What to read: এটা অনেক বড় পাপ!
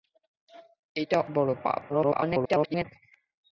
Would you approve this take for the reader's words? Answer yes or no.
no